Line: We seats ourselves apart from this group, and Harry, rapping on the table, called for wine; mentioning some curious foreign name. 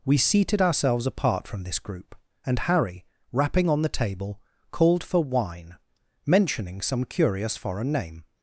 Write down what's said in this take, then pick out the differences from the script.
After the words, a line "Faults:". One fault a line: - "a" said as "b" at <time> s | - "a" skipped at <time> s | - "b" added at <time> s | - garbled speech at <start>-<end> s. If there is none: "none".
We seated ourselves apart from this group, and Harry, rapping on the table, called for wine; mentioning some curious foreign name.
Faults:
- "seats" said as "seated" at 0.2 s